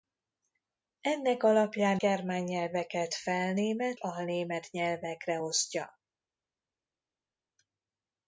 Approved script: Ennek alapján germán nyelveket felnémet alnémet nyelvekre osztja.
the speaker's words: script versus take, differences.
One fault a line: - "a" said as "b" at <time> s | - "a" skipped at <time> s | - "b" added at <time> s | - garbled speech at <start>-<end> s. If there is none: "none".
none